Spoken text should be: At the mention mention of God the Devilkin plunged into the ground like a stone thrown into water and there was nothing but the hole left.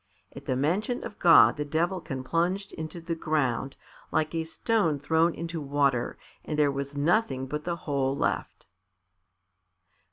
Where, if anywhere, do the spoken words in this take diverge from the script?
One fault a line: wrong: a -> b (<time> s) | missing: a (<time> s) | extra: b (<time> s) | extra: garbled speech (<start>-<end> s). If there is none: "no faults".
missing: mention (1.0 s)